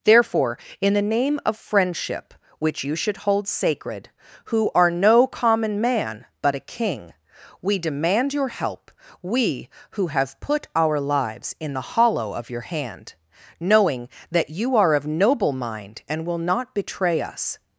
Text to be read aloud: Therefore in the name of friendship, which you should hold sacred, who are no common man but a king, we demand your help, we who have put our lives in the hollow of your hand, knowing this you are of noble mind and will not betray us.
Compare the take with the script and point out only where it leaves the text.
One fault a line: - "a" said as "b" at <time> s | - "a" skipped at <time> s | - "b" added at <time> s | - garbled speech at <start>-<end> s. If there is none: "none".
- "this" said as "that" at 14.3 s